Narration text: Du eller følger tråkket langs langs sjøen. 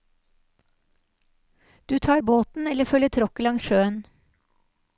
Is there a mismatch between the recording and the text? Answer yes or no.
yes